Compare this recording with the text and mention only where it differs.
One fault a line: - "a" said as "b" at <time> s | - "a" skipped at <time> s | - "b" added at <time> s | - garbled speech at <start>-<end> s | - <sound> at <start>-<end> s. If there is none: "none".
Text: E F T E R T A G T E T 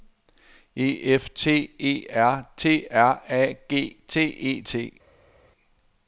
- "R" added at 2.9 s